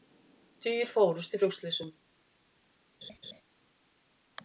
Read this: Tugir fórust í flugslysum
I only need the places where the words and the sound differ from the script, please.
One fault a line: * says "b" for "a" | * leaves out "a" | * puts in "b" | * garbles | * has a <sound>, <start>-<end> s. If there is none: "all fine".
* has a laugh, 3.0-3.4 s